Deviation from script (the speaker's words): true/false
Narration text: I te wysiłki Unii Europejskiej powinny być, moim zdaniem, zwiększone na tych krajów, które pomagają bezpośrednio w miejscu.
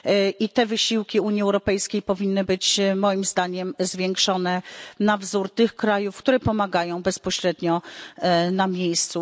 true